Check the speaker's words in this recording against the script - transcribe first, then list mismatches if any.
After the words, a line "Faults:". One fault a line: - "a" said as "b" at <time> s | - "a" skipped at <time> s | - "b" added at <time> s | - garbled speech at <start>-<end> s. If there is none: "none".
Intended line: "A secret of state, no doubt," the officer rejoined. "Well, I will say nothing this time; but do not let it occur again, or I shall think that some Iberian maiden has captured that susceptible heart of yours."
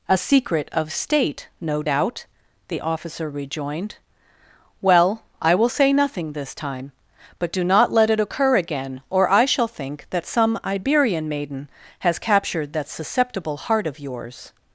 "A secret of state, no doubt," the officer rejoined. "Well, I will say nothing this time; but do not let it occur again, or I shall think that some Iberian maiden has captured that susceptible heart of yours."
Faults:
none